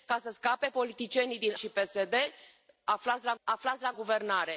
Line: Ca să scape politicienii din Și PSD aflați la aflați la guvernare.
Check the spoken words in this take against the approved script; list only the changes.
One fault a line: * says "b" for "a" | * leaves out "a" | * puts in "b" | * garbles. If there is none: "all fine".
all fine